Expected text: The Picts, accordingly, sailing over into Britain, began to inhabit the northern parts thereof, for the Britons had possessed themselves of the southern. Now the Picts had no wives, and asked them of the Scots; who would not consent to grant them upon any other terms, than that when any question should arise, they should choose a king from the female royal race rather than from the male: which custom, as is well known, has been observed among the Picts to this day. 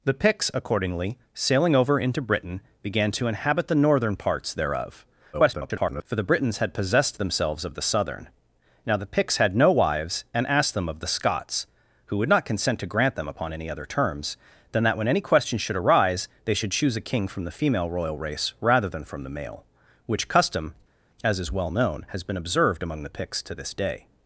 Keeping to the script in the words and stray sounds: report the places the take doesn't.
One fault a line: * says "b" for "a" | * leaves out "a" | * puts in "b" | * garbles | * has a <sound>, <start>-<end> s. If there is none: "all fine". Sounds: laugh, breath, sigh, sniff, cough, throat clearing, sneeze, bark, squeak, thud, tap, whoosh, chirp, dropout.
* garbles